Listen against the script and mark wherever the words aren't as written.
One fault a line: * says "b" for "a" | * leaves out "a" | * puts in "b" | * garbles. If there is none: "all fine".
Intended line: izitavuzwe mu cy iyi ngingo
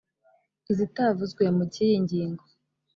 all fine